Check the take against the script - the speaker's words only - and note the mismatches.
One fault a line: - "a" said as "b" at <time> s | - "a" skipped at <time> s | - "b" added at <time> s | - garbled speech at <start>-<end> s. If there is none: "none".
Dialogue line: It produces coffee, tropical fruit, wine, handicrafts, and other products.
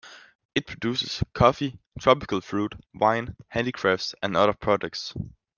none